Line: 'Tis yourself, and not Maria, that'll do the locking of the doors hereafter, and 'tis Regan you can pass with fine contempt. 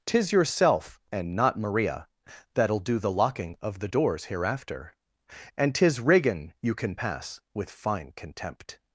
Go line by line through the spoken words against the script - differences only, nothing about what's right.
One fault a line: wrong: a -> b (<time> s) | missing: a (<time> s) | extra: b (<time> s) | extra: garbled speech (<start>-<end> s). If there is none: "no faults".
no faults